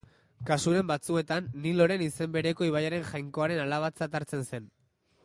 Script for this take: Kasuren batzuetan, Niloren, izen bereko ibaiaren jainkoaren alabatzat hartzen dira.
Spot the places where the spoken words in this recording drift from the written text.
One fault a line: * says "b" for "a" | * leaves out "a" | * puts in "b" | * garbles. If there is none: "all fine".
* says "zen" for "dira"